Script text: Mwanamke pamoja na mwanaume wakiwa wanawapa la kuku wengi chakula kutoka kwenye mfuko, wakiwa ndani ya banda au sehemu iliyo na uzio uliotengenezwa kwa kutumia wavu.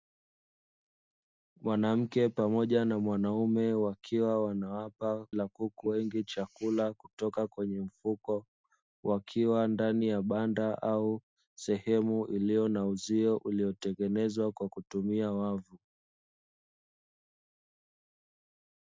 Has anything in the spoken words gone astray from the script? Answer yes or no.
no